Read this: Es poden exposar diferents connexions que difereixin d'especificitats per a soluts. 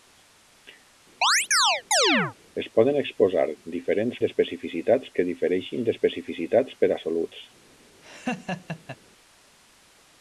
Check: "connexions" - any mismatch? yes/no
yes